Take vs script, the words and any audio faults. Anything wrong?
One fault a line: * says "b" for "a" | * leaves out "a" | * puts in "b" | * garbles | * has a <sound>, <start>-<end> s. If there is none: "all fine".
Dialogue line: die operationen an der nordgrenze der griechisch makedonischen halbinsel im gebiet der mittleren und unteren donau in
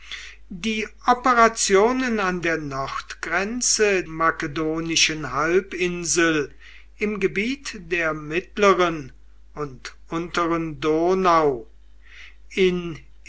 * leaves out "der griechisch"